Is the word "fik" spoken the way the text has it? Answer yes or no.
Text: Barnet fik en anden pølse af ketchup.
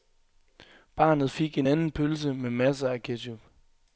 yes